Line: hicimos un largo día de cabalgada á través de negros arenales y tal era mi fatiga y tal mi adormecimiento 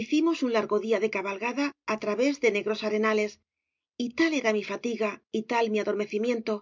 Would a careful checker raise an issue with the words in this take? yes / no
no